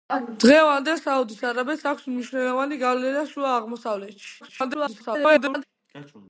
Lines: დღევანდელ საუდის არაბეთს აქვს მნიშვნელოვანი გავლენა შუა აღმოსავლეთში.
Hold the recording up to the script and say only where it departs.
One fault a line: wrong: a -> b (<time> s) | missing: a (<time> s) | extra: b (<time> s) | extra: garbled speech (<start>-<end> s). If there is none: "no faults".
extra: garbled speech (4.4-5.6 s)